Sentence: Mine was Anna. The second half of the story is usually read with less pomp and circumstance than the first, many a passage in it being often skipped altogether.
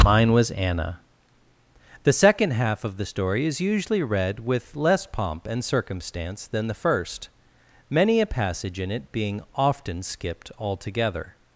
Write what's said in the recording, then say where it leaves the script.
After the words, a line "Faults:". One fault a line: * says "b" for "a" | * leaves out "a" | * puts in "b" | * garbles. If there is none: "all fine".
Mine was Anna. The second half of the story is usually read with less pomp and circumstance than the first, many a passage in it being often skipped altogether.
Faults:
all fine